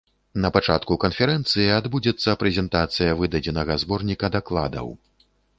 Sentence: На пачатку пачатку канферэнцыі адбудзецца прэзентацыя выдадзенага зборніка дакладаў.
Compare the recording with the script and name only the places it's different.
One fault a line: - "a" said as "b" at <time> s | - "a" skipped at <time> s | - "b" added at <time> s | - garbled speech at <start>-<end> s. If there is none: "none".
- "пачатку" skipped at 1.0 s